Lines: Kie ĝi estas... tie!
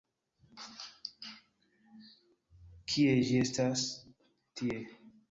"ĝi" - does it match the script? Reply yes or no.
yes